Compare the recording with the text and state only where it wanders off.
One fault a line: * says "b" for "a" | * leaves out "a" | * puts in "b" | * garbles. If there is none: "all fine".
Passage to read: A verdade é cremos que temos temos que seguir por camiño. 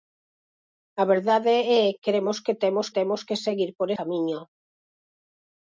all fine